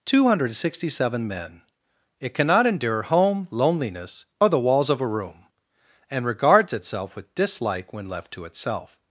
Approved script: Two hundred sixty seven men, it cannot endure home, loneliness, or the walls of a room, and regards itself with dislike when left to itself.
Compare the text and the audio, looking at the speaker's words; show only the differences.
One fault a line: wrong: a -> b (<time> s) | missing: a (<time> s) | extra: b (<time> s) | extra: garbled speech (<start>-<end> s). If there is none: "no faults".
no faults